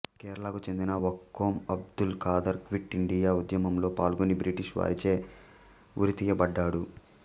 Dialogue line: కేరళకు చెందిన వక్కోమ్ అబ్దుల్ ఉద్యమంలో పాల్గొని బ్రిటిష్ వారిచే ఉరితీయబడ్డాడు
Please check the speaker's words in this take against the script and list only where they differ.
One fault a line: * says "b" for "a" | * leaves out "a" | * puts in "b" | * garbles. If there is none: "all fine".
* puts in "ఖాదర్ క్విట్ ఇండియా"